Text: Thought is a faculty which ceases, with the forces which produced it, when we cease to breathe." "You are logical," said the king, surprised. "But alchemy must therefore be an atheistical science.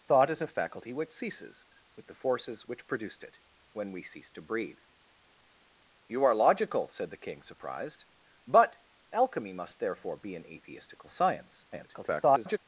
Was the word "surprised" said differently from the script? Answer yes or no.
no